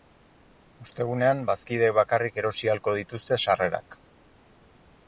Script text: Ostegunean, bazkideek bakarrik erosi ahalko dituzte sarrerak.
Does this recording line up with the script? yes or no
yes